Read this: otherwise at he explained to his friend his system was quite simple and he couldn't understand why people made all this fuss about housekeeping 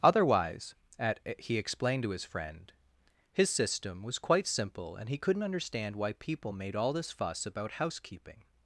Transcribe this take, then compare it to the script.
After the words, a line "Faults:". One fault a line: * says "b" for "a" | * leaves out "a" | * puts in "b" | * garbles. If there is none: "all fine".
otherwise at he explained to his friend his system was quite simple and he couldn't understand why people made all this fuss about housekeeping
Faults:
all fine